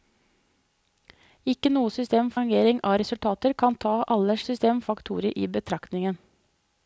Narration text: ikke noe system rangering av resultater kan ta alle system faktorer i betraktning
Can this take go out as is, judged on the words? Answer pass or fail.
pass